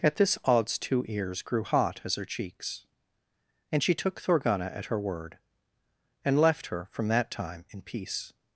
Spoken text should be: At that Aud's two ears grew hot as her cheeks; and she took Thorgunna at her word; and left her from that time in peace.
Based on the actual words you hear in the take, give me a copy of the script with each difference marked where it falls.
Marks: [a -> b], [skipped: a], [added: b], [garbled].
At [that -> this] Aud's two ears grew hot as her cheeks; and she took Thorgunna at her word; and left her from that time in peace.